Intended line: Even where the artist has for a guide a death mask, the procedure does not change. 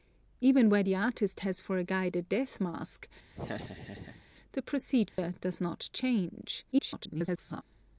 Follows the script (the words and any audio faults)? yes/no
no